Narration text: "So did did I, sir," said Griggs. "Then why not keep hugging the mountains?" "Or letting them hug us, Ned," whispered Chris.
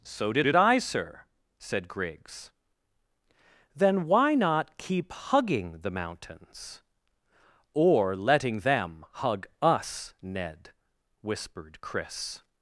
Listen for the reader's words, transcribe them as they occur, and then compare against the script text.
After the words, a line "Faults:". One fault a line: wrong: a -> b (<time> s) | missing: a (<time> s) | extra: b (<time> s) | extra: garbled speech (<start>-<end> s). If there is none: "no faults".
"So did did I, sir," said Griggs. "Then why not keep hugging the mountains?" "Or letting them hug us, Ned," whispered Chris.
Faults:
no faults